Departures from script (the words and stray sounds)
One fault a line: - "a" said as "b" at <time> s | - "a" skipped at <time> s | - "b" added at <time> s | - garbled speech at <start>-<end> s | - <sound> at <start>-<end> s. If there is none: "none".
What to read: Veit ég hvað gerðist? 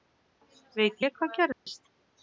- dropout at 1.5-1.7 s